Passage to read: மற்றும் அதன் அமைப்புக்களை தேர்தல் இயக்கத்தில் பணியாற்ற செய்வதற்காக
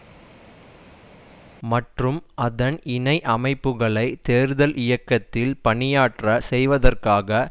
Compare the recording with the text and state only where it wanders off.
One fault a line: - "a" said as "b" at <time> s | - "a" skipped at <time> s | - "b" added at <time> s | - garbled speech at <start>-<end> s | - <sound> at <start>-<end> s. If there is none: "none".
- "இணை" added at 2.9 s